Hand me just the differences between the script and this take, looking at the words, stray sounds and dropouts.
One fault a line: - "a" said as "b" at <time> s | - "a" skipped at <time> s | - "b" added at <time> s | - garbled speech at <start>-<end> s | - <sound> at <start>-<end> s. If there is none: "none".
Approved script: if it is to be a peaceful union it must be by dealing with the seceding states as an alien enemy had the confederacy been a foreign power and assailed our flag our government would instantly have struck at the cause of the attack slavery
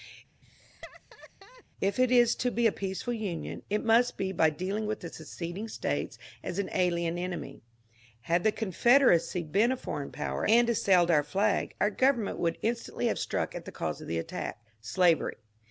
- laugh at 0.4-1.6 s